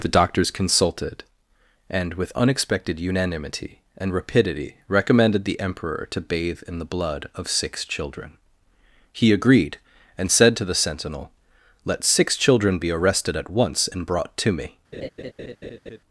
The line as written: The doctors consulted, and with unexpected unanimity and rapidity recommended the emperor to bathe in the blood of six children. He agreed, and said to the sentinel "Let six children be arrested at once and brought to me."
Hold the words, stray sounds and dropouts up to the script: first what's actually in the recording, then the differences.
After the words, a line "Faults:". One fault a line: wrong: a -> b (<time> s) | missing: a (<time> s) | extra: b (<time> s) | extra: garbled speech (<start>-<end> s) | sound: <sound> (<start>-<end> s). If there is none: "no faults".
The doctors consulted, and with unexpected unanimity and rapidity recommended the emperor to bathe in the blood of six children. He agreed, and said to the sentinel "Let six children be arrested at once and brought to me."
Faults:
sound: laugh (14.9-16.0 s)